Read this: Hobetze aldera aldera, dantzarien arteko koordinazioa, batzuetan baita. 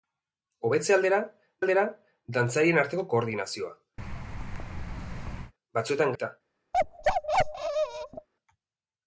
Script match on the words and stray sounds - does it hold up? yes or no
no